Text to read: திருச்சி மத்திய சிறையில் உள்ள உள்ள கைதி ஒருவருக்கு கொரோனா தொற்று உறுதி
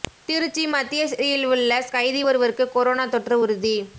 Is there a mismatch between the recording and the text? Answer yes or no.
yes